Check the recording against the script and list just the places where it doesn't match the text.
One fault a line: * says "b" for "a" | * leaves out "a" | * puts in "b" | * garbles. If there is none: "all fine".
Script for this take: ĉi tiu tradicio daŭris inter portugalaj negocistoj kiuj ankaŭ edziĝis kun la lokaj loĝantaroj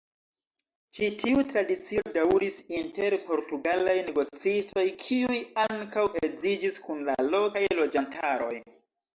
all fine